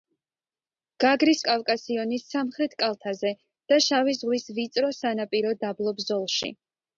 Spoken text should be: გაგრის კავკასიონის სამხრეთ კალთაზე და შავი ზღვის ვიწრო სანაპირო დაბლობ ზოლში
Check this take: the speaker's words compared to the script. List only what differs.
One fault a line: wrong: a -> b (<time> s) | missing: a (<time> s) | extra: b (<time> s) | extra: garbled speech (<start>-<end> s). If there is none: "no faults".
no faults